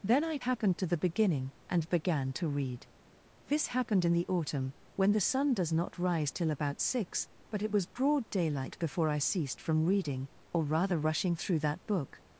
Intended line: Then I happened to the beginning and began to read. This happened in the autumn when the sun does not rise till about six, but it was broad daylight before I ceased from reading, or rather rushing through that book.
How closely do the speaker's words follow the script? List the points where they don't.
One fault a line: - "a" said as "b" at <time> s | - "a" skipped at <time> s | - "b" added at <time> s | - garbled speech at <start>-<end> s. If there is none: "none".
none